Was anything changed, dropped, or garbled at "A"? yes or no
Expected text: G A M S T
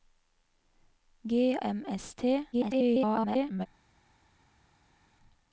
yes